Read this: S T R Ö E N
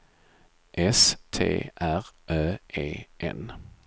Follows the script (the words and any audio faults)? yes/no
yes